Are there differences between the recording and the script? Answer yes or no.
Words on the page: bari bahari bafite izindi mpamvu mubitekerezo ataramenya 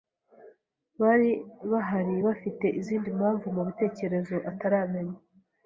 no